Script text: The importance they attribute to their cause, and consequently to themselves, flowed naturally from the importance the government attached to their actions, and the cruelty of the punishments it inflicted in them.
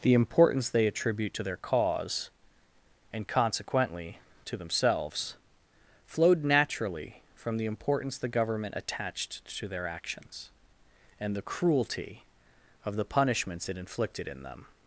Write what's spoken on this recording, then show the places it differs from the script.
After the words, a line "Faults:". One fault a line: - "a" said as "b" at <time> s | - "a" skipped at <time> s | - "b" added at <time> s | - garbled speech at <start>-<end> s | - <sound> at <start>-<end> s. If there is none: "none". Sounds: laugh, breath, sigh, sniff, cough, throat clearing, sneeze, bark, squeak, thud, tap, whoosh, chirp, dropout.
The importance they attribute to their cause, and consequently to themselves, flowed naturally from the importance the government attached to their actions, and the cruelty of the punishments it inflicted in them.
Faults:
none